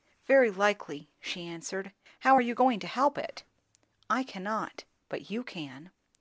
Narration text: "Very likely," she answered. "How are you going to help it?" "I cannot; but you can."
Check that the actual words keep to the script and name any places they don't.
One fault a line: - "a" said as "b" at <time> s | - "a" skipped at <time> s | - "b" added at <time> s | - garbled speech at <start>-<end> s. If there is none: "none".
none